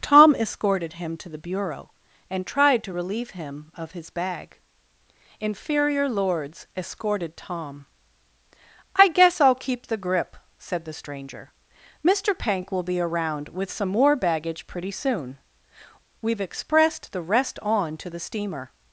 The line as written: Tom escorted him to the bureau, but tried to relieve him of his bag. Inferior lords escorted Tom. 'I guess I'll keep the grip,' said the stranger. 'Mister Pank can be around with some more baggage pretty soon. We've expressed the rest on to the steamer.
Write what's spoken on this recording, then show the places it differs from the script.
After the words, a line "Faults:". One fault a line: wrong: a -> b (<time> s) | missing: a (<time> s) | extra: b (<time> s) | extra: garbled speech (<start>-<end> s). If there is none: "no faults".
Tom escorted him to the bureau, and tried to relieve him of his bag. Inferior lords escorted Tom. 'I guess I'll keep the grip,' said the stranger. 'Mister Pank will be around with some more baggage pretty soon. We've expressed the rest on to the steamer.
Faults:
wrong: but -> and (2.3 s)
wrong: can -> will (12.7 s)